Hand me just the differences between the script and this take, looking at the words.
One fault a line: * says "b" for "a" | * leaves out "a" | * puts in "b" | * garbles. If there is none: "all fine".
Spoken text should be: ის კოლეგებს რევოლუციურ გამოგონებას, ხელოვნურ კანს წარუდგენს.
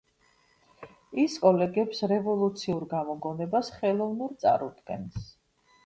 * leaves out "კანს"